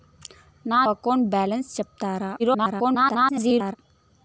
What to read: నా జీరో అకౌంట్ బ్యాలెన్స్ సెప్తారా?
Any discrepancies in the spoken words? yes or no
yes